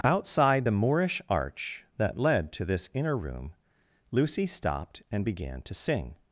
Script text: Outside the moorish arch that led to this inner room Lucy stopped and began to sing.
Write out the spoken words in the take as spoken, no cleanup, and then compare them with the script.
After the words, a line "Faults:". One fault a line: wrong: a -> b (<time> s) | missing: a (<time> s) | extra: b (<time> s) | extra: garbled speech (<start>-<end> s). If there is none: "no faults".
Outside the moorish arch that led to this inner room Lucy stopped and began to sing.
Faults:
no faults